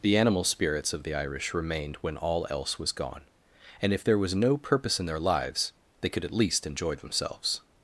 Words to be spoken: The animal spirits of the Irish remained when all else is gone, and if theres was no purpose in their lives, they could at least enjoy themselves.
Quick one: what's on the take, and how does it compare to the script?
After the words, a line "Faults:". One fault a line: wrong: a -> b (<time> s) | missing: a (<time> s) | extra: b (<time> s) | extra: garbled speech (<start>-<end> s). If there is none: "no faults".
The animal spirits of the Irish remained when all else was gone, and if there was no purpose in their lives, they could at least enjoy themselves.
Faults:
wrong: is -> was (2.8 s)
wrong: theres -> there (4.0 s)